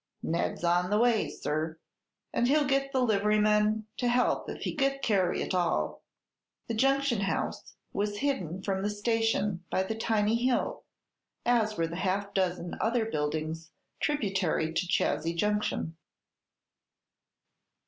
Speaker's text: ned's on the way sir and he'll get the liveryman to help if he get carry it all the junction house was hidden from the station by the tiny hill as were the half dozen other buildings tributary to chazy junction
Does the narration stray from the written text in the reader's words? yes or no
no